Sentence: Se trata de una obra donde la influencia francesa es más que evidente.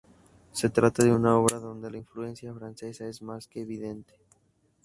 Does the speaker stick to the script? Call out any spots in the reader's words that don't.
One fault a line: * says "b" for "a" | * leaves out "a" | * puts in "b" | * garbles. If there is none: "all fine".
all fine